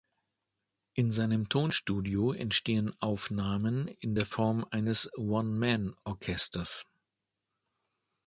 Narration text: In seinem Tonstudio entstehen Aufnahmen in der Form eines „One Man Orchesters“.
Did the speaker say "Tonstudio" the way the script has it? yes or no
yes